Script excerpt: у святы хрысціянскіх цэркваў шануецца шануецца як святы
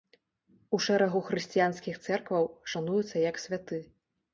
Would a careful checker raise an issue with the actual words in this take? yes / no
yes